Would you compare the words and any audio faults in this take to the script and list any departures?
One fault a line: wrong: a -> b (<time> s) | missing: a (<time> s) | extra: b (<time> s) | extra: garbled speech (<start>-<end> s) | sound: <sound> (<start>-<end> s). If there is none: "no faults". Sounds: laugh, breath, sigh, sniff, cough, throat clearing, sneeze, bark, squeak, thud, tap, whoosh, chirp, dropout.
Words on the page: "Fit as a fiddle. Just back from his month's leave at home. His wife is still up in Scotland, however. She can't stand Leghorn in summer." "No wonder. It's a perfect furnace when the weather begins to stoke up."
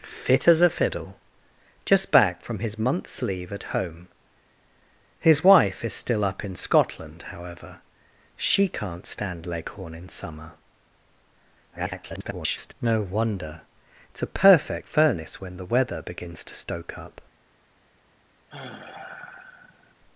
extra: garbled speech (11.7-12.7 s)
sound: sigh (18.5-19.9 s)